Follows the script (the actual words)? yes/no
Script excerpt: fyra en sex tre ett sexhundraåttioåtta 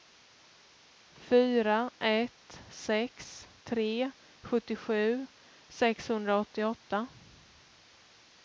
no